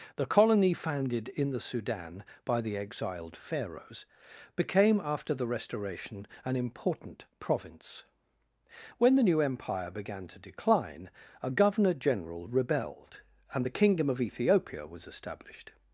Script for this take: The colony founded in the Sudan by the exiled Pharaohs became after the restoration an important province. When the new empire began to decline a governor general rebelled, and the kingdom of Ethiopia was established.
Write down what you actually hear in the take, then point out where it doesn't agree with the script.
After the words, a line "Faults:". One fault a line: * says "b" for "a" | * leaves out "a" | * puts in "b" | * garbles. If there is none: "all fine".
The colony founded in the Sudan by the exiled Pharaohs became after the restoration an important province. When the new empire began to decline a governor general rebelled, and the kingdom of Ethiopia was established.
Faults:
all fine